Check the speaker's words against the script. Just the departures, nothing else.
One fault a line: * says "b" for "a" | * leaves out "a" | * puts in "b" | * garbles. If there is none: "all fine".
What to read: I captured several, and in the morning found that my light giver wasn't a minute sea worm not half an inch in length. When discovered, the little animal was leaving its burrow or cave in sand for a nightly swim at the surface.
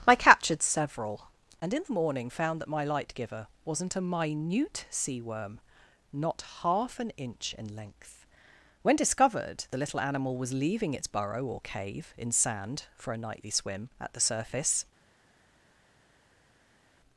all fine